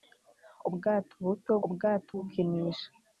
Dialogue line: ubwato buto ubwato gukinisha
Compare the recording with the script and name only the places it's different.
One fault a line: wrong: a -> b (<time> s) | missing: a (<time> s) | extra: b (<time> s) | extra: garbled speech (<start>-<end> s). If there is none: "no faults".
no faults